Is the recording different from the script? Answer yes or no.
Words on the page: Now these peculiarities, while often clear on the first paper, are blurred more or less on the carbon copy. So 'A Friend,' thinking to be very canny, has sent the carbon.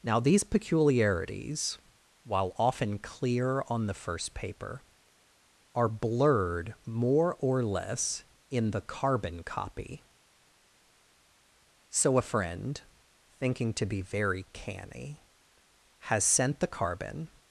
yes